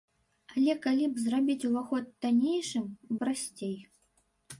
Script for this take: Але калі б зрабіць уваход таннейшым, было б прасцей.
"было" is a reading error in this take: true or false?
true